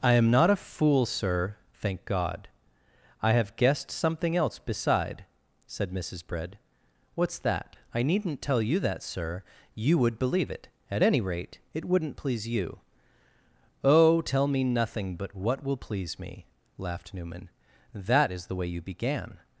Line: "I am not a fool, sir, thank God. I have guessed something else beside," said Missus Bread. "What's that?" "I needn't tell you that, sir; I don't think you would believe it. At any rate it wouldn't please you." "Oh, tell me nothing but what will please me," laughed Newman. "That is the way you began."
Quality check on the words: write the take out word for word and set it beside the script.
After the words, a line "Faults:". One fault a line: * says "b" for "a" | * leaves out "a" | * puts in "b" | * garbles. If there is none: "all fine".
"I am not a fool, sir, thank God. I have guessed something else beside," said Missus Bread. "What's that?" "I needn't tell you that, sir; you would believe it. At any rate it wouldn't please you." "Oh, tell me nothing but what will please me," laughed Newman. "That is the way you began."
Faults:
* leaves out "I don't think"